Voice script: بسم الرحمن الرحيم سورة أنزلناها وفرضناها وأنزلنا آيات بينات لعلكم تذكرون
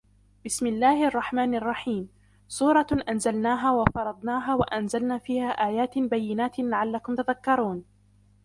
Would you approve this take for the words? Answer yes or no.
no